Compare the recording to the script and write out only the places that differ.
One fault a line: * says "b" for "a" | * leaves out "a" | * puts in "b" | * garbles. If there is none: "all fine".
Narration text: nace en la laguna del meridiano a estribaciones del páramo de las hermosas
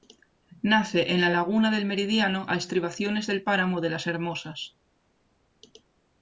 all fine